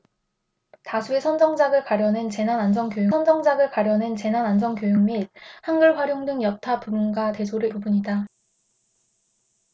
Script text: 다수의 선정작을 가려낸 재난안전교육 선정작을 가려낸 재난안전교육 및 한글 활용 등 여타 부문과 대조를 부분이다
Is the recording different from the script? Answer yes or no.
no